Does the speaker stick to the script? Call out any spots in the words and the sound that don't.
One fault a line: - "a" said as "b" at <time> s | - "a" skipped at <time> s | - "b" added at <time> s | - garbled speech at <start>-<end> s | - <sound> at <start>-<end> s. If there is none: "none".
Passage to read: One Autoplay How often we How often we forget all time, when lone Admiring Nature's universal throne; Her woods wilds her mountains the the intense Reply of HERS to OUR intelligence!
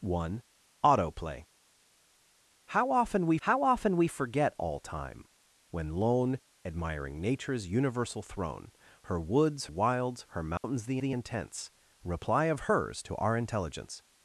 - dropout at 10.6-10.6 s